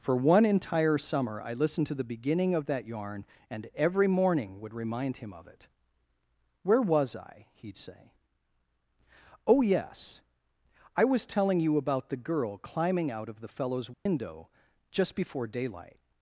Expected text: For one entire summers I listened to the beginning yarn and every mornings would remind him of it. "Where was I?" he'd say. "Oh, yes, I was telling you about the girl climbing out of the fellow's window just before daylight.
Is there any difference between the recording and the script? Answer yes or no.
yes